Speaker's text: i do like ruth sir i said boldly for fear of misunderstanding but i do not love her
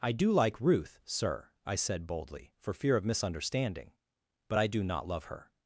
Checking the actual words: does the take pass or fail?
pass